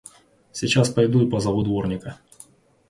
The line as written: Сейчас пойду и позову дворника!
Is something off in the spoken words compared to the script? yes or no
no